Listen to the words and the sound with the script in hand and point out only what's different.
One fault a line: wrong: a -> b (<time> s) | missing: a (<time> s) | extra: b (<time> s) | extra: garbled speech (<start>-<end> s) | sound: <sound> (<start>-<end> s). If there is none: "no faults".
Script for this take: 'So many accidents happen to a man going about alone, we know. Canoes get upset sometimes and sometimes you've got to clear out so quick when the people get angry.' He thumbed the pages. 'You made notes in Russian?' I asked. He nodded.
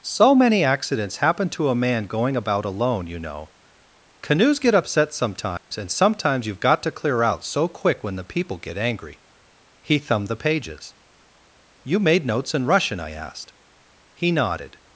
wrong: we -> you (3.0 s)
sound: dropout (5.6-5.7 s)